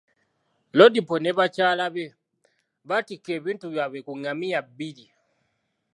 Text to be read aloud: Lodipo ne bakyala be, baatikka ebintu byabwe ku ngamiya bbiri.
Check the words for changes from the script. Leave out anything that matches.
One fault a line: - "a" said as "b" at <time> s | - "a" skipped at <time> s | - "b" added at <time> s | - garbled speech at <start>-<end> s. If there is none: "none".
none